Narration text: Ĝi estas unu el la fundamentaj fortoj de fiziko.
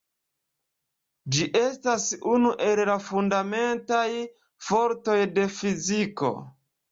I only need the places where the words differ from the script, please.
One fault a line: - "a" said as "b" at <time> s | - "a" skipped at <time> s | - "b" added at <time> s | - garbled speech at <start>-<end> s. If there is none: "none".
none